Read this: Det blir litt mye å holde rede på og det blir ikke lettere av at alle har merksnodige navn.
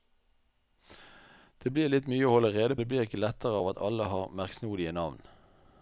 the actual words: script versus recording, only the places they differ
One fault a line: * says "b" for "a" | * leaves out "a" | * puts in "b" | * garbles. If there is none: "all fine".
* leaves out "på og"